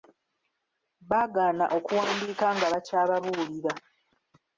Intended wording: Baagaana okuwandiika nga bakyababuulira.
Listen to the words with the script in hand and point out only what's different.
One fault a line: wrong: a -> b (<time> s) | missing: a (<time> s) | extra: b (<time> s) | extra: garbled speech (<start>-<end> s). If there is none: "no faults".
no faults